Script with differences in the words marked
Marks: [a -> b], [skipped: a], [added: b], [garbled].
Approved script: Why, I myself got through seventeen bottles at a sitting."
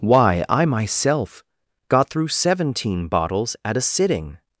Why, I myself got through seventeen bottles at a sitting."